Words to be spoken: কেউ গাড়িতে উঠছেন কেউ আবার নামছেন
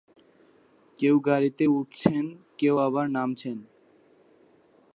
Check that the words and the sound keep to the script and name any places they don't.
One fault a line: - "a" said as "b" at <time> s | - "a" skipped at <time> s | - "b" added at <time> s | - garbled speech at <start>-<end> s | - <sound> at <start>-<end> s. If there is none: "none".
none